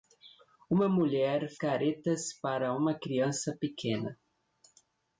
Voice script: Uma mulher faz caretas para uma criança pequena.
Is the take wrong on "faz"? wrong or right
wrong